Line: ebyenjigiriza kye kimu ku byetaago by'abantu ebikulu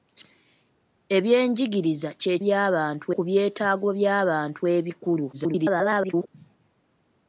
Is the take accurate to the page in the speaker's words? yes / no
no